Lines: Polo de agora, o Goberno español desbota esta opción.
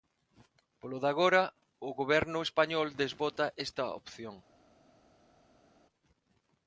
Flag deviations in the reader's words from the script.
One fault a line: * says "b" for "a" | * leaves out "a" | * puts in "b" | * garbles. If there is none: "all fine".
all fine